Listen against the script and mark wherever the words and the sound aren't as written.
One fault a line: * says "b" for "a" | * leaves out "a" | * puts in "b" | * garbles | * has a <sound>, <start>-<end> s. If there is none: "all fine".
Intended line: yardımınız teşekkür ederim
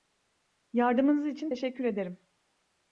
* puts in "için"